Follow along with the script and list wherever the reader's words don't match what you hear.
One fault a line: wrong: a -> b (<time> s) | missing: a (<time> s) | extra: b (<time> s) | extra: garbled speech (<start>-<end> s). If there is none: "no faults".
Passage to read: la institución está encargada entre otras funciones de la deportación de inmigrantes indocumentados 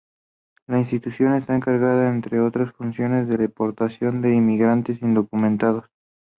missing: la (3.4 s)